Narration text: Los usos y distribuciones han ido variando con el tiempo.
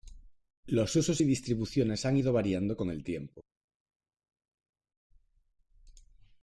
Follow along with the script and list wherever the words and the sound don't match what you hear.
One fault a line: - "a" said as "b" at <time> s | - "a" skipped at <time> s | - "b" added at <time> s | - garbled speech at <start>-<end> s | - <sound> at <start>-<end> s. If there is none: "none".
none